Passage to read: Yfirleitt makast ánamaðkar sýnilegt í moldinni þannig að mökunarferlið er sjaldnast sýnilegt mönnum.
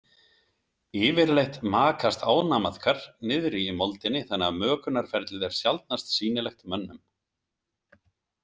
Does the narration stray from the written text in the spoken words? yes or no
yes